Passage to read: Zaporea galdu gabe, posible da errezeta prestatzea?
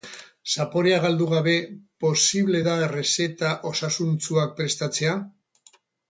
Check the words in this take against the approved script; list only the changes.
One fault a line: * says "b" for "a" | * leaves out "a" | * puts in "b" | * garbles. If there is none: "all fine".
* puts in "osasuntsuak"